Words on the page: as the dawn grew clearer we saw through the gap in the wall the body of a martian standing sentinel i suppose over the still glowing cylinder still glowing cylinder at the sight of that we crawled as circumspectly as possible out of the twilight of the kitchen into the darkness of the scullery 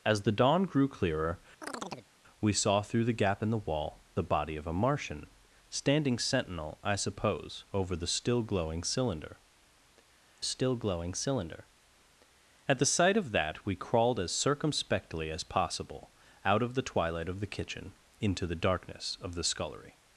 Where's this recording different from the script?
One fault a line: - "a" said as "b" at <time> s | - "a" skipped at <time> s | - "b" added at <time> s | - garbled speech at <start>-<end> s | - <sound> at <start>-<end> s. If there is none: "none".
- chirp at 1.6-2.1 s